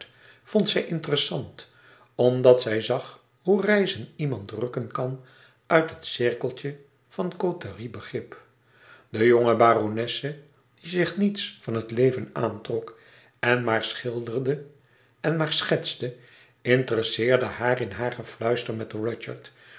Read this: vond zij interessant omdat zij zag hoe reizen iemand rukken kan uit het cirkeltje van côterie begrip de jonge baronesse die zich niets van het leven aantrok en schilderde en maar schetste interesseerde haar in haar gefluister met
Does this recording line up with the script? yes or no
no